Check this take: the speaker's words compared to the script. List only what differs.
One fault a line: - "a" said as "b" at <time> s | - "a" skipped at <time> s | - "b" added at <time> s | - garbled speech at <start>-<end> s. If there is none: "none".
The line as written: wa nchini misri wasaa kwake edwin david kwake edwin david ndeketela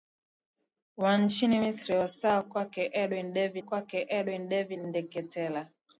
none